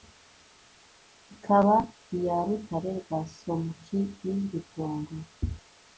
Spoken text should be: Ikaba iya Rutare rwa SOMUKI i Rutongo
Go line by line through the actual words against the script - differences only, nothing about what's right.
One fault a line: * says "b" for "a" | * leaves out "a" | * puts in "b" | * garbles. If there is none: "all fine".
all fine